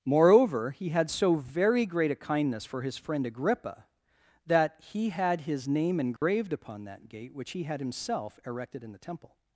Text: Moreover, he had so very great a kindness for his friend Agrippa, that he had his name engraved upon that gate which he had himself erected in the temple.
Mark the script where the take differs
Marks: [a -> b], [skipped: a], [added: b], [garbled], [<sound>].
Moreover, he had so very great a kindness for his friend Agrippa, that he had his name engraved [dropout] upon that gate which he had himself erected in the temple.